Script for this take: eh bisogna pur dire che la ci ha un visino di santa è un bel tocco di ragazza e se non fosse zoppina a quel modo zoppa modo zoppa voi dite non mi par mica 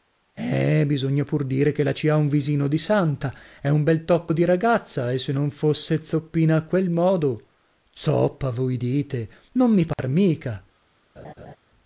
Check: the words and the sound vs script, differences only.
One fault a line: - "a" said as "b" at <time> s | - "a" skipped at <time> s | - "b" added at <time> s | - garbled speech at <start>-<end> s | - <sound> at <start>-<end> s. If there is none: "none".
- "modo zoppa" skipped at 8.5 s
- dropout at 9.9-10.0 s
- laugh at 11.2-11.6 s